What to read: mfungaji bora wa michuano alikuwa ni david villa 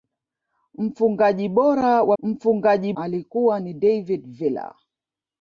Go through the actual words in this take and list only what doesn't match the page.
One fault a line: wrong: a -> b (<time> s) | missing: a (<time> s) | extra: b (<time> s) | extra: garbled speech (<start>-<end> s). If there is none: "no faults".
wrong: michuano -> mfungaji (2.2 s)